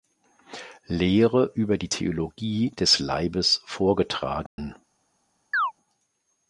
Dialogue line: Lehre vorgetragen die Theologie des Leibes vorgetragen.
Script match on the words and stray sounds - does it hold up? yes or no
no